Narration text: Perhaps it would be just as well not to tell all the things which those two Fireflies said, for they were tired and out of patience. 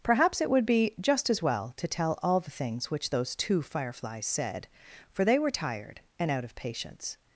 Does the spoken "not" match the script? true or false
false